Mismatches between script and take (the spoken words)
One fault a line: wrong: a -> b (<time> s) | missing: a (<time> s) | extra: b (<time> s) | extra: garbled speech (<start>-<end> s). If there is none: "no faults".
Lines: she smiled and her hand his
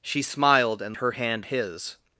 no faults